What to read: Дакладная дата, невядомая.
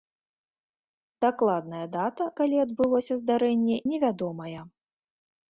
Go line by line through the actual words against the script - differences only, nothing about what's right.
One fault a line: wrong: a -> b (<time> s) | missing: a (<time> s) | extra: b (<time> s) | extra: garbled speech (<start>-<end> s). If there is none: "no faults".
extra: калі адбылося здарэнне (2.4 s)